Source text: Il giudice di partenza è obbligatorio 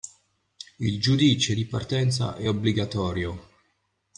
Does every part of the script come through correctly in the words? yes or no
yes